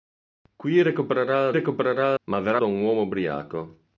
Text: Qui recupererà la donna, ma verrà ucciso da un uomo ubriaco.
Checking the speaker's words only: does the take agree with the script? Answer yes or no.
no